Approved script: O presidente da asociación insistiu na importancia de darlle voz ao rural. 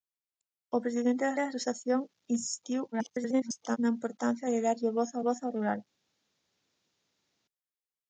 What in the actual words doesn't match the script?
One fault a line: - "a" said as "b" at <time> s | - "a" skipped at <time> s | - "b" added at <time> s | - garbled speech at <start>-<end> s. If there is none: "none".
- "da" added at 1.4 s
- garbled speech at 2.9-3.8 s
- "voz ao" added at 5.3 s